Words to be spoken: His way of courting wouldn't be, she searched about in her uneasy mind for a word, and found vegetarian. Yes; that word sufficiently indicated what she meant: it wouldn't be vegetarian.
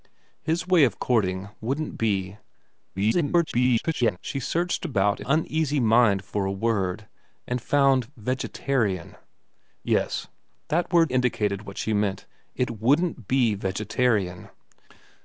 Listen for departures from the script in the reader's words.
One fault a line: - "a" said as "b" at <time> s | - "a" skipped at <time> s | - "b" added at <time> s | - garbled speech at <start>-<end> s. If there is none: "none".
- garbled speech at 3.0-4.2 s
- "her" skipped at 5.3 s
- "sufficiently" skipped at 11.1 s